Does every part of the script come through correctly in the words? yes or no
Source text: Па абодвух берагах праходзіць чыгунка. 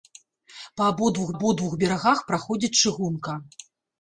no